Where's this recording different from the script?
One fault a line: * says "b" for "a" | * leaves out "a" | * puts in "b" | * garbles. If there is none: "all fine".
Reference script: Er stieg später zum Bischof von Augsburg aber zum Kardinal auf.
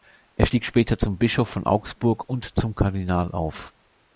* says "und" for "aber"